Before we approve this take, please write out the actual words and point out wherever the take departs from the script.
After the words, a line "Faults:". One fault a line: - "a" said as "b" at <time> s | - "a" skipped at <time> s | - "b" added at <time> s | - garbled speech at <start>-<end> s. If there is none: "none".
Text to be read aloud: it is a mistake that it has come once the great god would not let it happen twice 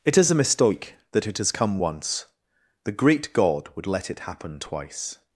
it is a mistake that it has come once the great god would let it happen twice
Faults:
- "not" skipped at 3.9 s